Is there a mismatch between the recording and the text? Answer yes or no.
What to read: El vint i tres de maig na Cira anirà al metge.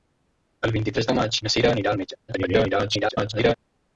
yes